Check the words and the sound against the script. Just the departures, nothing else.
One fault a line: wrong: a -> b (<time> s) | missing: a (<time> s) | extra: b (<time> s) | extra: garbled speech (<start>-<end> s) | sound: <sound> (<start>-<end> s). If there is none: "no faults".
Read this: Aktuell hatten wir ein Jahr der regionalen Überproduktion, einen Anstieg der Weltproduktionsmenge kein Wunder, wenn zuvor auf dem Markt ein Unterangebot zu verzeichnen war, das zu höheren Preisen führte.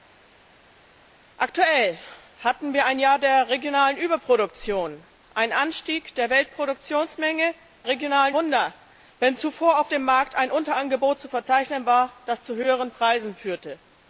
wrong: kein -> regionalen (7.9 s)